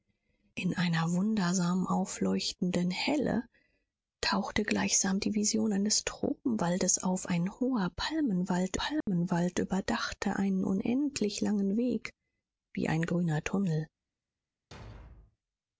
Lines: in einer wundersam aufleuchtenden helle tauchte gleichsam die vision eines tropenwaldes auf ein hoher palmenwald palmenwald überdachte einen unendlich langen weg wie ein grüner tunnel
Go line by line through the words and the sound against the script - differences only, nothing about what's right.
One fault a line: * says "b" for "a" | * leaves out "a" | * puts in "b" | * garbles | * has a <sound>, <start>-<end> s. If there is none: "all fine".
* has a dropout, 9.0-9.1 s
* has a thud, 14.7-15.4 s